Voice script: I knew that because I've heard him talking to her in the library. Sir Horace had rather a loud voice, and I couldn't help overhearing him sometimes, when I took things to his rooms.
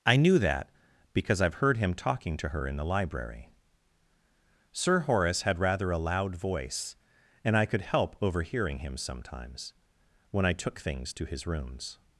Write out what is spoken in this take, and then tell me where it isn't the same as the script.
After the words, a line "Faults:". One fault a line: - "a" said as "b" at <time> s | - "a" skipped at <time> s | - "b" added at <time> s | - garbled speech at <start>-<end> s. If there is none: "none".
I knew that because I've heard him talking to her in the library. Sir Horace had rather a loud voice, and I could help overhearing him sometimes, when I took things to his rooms.
Faults:
- "couldn't" said as "could" at 7.7 s